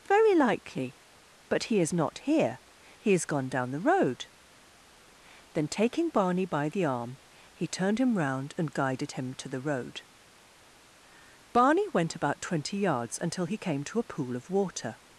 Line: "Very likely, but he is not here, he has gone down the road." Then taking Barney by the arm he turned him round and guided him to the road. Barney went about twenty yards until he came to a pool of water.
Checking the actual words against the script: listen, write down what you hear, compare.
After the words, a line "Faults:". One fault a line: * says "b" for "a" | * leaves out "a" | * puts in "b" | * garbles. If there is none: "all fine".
"Very likely, but he is not here, he has gone down the road." Then taking Barney by the arm he turned him round and guided him to the road. Barney went about twenty yards until he came to a pool of water.
Faults:
all fine